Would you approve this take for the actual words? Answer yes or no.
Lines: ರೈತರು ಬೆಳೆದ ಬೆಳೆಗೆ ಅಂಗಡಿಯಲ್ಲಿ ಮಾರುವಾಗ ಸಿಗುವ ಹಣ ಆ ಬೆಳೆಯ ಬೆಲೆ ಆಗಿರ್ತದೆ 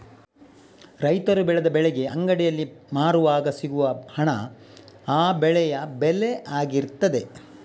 yes